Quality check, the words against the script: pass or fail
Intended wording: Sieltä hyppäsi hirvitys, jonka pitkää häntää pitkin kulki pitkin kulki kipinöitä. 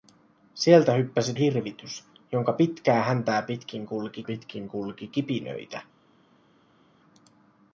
pass